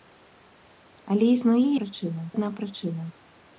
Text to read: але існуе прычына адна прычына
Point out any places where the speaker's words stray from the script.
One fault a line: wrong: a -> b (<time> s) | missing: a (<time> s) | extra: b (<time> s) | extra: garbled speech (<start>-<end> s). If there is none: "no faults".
no faults